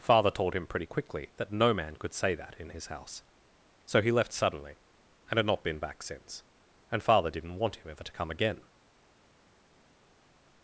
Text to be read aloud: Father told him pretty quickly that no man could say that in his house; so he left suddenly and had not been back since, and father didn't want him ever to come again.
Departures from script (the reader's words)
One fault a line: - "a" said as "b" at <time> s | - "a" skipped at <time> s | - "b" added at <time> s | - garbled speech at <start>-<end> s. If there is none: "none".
none